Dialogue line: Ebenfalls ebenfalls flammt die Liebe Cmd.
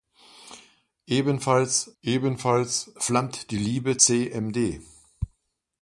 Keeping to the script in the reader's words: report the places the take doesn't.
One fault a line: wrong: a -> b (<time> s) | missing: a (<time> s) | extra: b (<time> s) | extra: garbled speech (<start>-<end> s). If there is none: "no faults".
no faults